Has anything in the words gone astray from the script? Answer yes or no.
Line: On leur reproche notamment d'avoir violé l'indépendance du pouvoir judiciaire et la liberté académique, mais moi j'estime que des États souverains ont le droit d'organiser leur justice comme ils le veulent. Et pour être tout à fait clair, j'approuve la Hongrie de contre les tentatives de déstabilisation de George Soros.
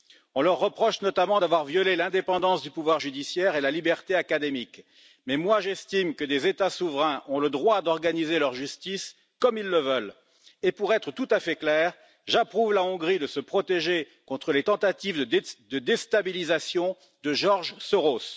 yes